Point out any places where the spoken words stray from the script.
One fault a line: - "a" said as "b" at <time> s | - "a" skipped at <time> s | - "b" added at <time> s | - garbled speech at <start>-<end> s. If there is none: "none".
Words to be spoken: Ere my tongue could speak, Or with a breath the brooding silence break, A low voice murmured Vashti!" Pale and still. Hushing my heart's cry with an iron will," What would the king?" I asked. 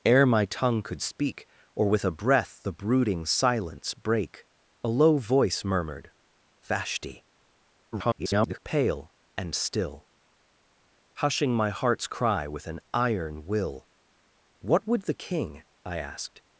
- garbled speech at 7.9-8.6 s